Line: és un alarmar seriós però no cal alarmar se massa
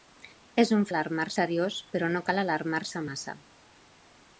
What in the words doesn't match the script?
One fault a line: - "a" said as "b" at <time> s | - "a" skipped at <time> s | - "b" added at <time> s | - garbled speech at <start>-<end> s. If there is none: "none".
none